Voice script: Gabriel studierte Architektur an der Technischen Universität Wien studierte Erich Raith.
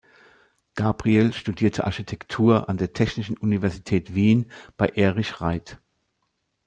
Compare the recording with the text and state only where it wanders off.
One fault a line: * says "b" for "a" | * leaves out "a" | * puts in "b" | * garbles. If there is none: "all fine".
* says "bei" for "studierte"